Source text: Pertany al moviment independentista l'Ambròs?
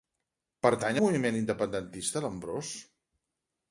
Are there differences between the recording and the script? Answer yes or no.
yes